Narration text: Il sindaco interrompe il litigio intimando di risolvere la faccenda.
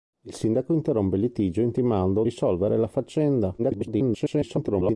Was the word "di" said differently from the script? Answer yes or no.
yes